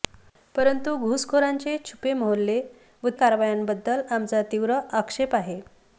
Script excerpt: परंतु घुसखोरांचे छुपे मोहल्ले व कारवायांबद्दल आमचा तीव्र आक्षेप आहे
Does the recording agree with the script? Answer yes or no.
yes